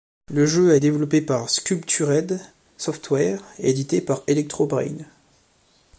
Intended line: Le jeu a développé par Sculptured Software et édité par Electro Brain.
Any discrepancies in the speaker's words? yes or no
no